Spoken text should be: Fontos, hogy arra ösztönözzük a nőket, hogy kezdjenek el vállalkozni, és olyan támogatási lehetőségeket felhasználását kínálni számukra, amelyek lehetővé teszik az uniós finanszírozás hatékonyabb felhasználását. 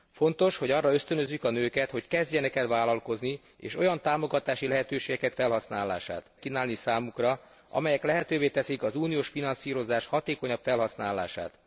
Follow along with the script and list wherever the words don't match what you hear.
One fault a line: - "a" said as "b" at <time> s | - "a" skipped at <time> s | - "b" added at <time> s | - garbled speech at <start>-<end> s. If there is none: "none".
none